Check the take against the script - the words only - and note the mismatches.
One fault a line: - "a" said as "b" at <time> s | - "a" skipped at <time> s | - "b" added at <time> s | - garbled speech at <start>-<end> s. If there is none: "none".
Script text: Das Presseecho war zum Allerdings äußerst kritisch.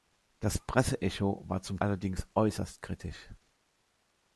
none